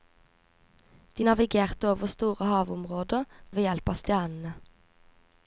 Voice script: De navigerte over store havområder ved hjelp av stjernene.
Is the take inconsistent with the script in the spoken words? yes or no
no